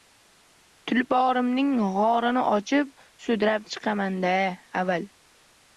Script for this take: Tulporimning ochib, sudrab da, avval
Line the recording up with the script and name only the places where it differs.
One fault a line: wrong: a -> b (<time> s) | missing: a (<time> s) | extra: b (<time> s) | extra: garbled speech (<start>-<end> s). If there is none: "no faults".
extra: go‘rini (2.0 s)
extra: chiqaman (3.8 s)